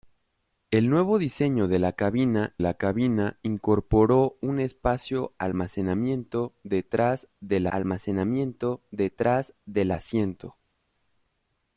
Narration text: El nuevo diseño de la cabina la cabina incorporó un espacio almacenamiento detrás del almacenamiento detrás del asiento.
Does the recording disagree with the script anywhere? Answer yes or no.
no